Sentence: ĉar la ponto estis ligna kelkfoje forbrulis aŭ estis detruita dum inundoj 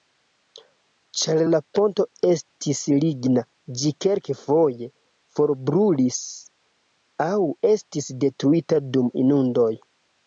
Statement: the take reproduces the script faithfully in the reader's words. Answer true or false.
false